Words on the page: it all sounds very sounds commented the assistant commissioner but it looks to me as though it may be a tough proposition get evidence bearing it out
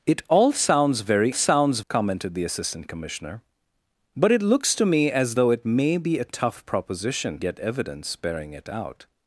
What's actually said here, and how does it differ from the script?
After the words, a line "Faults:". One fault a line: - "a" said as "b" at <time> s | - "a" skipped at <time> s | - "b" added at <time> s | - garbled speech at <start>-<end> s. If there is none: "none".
it all sounds very sounds commented the assistant commissioner but it looks to me as though it may be a tough proposition get evidence bearing it out
Faults:
none